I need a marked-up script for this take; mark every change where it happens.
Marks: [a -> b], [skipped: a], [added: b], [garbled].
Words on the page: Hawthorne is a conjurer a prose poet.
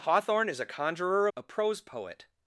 Hawthorne is a conjurer a prose poet.